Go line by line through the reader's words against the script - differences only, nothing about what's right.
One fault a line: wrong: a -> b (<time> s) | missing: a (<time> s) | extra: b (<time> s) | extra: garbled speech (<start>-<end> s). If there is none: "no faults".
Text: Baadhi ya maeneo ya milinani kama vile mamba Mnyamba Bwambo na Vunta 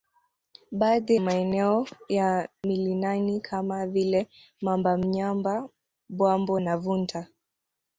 missing: ya (1.1 s)